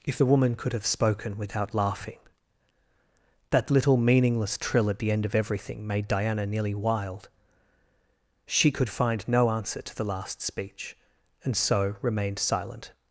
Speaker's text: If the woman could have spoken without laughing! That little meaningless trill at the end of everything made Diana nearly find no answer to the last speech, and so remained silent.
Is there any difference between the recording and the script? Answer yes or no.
yes